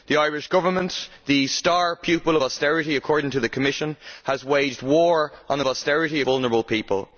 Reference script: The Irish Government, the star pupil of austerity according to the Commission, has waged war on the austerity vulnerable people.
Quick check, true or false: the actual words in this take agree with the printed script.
true